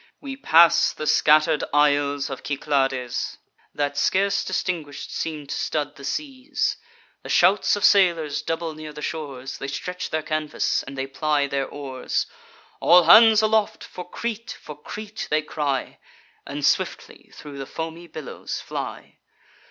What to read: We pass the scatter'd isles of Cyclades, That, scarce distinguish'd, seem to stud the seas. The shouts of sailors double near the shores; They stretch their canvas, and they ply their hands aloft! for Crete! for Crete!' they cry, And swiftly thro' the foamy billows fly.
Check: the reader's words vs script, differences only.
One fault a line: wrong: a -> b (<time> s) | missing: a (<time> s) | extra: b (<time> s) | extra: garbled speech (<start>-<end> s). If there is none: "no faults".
extra: oars All (11.7 s)